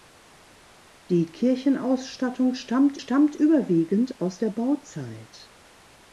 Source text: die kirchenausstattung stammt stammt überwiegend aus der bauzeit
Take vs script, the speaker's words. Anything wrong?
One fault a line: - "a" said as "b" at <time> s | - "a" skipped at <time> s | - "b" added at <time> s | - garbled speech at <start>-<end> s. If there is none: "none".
none